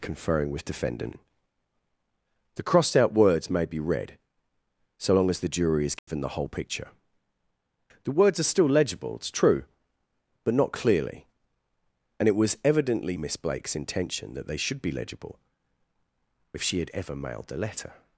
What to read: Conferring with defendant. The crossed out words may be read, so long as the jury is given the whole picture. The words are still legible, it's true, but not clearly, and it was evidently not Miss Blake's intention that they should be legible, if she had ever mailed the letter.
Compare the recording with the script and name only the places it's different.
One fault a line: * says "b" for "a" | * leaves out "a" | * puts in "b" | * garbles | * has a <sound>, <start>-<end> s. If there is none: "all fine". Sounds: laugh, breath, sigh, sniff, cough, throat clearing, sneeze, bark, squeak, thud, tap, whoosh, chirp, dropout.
* has a dropout, 6.0-6.1 s
* leaves out "not"